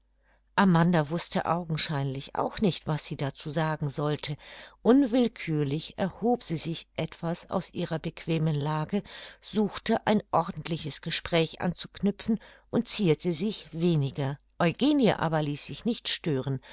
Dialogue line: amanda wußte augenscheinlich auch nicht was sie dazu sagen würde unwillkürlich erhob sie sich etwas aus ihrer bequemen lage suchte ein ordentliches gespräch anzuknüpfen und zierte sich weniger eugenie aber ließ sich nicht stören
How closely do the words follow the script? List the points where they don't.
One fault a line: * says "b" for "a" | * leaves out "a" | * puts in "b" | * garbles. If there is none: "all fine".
* says "sollte" for "würde"